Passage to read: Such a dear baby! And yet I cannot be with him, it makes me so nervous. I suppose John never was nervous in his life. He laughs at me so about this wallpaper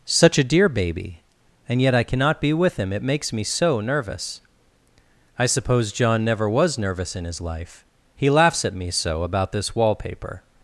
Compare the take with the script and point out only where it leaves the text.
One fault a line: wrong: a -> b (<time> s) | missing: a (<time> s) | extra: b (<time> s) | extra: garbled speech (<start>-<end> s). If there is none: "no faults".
no faults